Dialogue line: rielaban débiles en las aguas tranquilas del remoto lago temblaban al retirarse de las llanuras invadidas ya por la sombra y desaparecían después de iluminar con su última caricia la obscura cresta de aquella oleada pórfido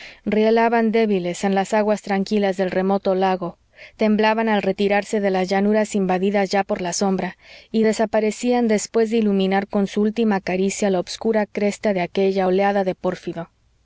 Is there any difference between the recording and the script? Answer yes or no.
yes